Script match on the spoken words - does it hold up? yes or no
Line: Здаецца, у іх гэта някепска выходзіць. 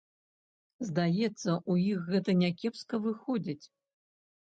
yes